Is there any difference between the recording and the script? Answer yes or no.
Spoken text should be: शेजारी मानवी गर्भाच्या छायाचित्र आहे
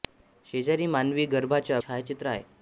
no